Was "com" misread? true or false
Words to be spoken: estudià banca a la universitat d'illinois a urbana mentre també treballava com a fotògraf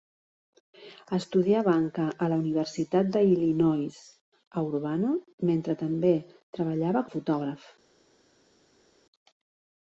true